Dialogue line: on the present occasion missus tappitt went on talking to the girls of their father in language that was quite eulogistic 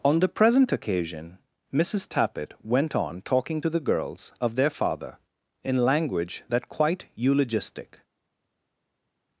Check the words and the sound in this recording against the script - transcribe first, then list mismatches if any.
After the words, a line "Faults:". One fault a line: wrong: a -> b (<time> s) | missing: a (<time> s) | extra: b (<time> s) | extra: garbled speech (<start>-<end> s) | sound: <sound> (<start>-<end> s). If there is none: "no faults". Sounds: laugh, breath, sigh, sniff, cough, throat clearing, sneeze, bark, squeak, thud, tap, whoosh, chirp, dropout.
on the present occasion missus tappitt went on talking to the girls of their father in language that quite eulogistic
Faults:
missing: was (6.7 s)